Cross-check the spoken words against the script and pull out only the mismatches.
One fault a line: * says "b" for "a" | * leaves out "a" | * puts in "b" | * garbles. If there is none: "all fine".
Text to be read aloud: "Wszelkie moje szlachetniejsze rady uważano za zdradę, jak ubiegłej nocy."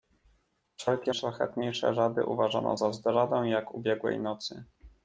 * leaves out "moje"